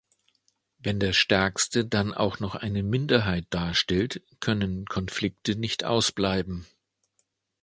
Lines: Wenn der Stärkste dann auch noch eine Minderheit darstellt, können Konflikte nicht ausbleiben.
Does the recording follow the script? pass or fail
pass